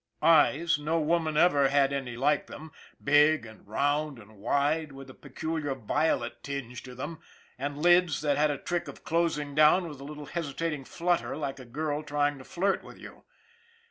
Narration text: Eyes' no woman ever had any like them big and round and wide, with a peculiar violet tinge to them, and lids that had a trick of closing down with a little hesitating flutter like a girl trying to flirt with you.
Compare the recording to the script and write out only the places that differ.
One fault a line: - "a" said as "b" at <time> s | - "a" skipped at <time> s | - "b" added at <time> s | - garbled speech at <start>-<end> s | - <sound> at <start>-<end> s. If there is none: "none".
none